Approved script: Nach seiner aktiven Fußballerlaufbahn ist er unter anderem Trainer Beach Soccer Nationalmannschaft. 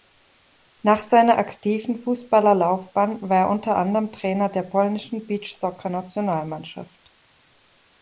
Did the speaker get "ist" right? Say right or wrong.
wrong